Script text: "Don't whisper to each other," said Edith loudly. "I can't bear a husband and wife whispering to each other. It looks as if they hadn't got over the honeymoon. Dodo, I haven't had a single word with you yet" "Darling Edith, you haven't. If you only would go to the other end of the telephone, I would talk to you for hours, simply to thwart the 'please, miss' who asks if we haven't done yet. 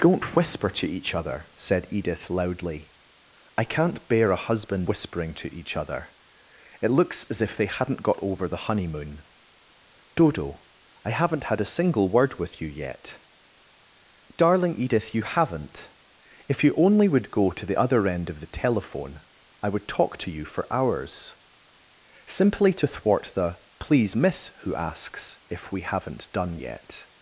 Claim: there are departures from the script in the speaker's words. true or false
true